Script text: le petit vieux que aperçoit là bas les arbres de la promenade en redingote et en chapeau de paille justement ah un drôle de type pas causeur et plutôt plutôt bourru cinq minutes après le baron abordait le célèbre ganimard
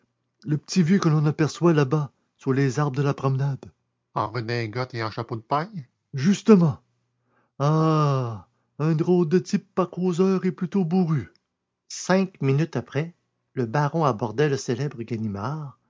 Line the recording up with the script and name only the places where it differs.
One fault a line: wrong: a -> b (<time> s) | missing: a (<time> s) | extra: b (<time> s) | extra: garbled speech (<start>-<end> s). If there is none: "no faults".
extra: l'on (1.1 s)
extra: sous (2.4 s)
missing: plutôt (10.9 s)